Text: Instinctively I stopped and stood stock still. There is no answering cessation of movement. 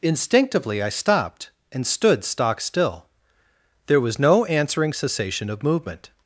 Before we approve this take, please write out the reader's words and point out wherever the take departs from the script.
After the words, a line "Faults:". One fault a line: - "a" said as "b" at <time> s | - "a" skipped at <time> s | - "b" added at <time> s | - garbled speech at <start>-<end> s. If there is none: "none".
Instinctively I stopped and stood stock still. There was no answering cessation of movement.
Faults:
- "is" said as "was" at 4.0 s